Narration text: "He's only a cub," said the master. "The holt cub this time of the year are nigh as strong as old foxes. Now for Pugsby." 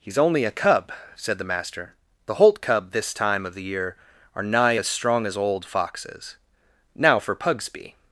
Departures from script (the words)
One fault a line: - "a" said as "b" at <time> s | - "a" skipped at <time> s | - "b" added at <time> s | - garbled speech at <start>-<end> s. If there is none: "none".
none